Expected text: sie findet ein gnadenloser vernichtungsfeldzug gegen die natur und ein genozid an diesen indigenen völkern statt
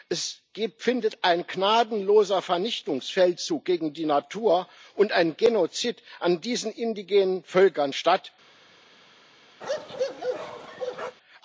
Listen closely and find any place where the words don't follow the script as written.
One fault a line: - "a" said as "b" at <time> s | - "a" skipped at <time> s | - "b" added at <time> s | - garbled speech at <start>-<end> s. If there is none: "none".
- "sie" said as "es" at 0.1 s